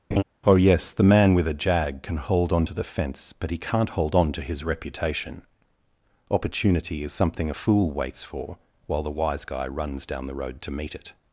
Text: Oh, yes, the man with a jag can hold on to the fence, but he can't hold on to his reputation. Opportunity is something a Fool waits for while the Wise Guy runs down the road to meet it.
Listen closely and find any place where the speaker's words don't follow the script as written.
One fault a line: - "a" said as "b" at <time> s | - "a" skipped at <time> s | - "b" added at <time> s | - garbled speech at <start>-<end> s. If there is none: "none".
none